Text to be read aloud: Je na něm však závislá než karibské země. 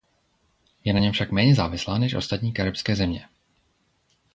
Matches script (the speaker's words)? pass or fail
fail